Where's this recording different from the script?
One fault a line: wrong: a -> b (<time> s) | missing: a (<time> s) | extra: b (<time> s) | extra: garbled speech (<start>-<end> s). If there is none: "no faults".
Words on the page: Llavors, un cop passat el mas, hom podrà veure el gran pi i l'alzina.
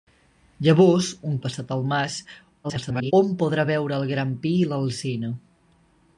missing: cop (1.4 s)
extra: garbled speech (2.6-3.1 s)